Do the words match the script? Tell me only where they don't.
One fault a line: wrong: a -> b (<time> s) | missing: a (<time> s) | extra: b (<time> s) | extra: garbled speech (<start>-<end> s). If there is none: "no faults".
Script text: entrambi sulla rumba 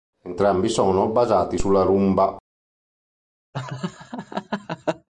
extra: sono basati (0.7 s)